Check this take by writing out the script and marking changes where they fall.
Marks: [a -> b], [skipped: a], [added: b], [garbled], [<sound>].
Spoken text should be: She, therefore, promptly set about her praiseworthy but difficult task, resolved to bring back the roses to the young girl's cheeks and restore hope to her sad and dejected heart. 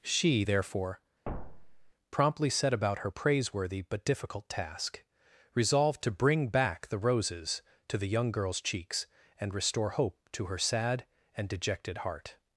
She, therefore, [thud] promptly set about her praiseworthy but difficult task, resolved to bring back the roses to the young girl's cheeks and restore hope to her sad and dejected heart.